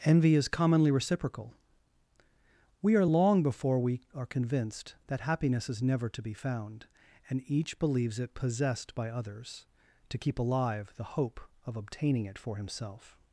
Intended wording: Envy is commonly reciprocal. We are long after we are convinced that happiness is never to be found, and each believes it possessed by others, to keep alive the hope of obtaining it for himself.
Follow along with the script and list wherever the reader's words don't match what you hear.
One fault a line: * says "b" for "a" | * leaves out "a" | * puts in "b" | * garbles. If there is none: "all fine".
* says "before" for "after"